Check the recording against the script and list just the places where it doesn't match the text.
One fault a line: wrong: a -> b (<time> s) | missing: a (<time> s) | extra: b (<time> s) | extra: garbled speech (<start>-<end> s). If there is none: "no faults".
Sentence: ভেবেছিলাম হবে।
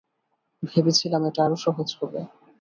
extra: এটা আরো সহজ (1.2 s)